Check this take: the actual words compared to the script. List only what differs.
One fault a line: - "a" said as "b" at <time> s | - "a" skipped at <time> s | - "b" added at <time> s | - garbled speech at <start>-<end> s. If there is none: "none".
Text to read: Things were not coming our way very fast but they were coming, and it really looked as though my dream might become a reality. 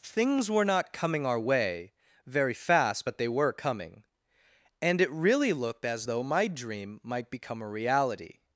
none